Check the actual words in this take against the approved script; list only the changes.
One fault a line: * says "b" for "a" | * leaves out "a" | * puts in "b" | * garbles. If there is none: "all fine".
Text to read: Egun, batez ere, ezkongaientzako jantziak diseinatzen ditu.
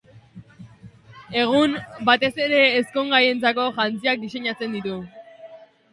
all fine